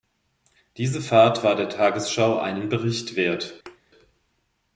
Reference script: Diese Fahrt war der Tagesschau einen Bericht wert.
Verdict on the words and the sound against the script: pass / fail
fail